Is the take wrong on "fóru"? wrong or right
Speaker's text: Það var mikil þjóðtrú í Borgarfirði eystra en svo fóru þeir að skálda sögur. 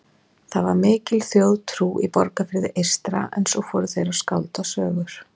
right